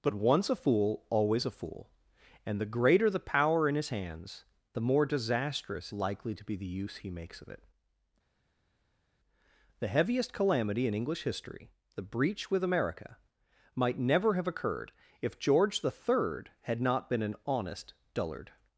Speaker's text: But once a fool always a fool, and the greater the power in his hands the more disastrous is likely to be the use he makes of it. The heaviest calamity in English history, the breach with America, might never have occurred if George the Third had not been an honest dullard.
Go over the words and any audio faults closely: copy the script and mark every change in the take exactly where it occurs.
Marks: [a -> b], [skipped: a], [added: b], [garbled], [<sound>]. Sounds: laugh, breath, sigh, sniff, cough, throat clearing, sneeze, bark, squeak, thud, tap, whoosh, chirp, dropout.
But once a fool always a fool, and the greater the power in his hands the more disastrous [skipped: is] likely to be the use he makes of it. The heaviest calamity in English history, the breach with America, might never have occurred if George the Third had not been an honest dullard.